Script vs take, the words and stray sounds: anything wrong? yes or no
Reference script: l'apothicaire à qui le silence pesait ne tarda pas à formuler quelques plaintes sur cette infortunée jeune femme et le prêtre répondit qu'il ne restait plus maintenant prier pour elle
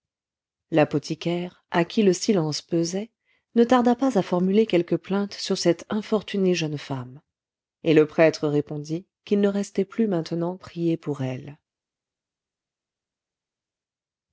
no